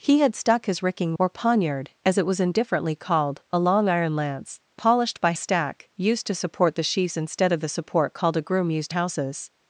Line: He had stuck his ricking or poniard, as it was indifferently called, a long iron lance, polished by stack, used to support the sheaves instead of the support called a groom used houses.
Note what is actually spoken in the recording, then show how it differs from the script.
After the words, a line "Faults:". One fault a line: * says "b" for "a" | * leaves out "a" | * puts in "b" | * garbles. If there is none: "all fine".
He had stuck his ricking or poniard, as it was indifferently called, a long iron lance, polished by stack, used to support the sheaves instead of the support called a groom used houses.
Faults:
all fine